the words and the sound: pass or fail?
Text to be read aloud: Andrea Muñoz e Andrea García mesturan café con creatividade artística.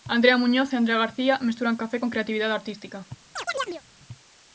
fail